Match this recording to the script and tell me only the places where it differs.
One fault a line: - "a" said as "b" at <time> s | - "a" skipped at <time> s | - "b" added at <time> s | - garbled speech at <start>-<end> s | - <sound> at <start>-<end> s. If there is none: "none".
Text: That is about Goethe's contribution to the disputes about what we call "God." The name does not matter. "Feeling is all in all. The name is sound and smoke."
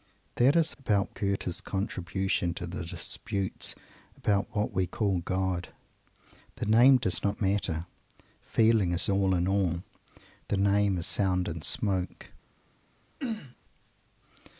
- throat clearing at 13.2-13.6 s